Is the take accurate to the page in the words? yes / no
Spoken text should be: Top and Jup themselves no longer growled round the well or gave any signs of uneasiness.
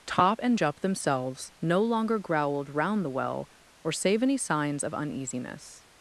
no